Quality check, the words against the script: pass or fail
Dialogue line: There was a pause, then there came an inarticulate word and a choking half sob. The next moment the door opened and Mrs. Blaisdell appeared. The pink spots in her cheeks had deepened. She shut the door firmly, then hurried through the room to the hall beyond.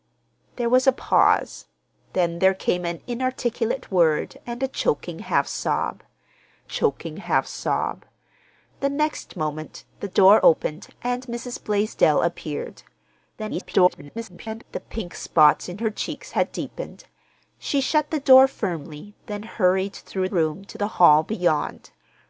fail